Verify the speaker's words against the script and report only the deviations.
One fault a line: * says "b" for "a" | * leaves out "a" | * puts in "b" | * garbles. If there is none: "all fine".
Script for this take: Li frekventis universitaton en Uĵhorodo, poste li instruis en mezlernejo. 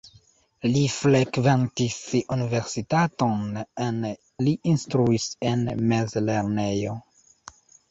* leaves out "Uĵhorodo poste"